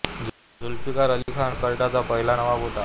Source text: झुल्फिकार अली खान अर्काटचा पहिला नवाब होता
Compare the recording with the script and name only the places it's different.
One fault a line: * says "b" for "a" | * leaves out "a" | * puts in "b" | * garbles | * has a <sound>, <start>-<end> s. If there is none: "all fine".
* has a dropout, 1.2-1.3 s